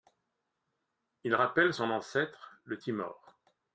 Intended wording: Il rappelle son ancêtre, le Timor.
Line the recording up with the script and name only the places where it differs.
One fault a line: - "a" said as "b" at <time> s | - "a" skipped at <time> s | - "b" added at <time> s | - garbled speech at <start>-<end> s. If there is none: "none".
none